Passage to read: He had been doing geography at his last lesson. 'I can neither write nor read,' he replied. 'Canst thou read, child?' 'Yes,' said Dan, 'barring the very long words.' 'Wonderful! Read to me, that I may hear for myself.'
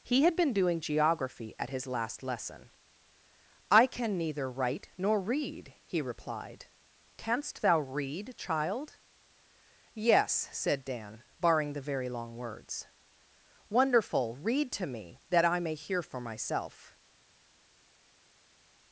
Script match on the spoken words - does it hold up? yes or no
yes